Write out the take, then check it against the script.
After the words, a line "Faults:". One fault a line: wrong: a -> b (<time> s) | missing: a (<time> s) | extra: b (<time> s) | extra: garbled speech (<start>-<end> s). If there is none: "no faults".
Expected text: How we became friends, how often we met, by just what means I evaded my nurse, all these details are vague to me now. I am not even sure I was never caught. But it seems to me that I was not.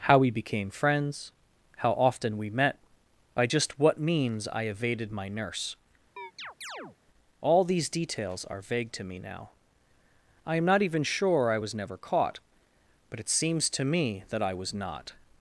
How we became friends, how often we met, by just what means I evaded my nurse, all these details are vague to me now. I am not even sure I was never caught. But it seems to me that I was not.
Faults:
no faults